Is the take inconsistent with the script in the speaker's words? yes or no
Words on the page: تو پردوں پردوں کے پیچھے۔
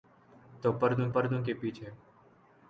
no